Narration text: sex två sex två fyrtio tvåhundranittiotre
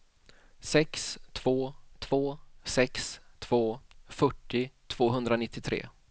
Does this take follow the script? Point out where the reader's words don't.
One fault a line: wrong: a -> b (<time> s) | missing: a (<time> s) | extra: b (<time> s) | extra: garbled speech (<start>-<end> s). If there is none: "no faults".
extra: två (2.0 s)